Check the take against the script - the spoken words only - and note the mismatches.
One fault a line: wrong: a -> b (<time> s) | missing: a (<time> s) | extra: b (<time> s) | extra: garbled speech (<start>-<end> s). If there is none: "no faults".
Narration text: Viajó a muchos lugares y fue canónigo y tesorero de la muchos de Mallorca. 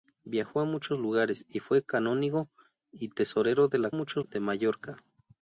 no faults